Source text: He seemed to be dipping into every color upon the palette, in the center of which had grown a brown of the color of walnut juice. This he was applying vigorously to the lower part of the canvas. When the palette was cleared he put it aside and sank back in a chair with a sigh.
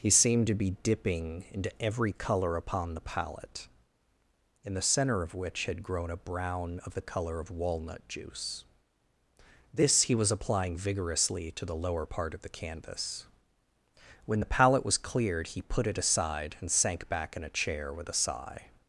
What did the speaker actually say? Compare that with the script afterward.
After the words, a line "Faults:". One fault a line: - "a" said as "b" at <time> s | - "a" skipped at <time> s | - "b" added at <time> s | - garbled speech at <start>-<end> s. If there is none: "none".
He seemed to be dipping into every color upon the palette, in the center of which had grown a brown of the color of walnut juice. This he was applying vigorously to the lower part of the canvas. When the palette was cleared he put it aside and sank back in a chair with a sigh.
Faults:
none